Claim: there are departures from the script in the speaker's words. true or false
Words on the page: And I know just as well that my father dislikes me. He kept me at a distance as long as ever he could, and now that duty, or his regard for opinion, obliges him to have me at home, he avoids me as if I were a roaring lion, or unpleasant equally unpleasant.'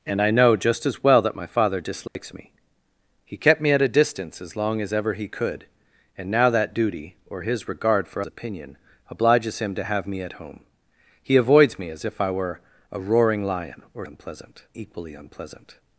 false